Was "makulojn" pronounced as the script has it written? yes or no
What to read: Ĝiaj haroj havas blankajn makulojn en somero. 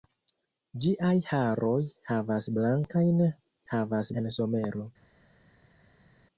no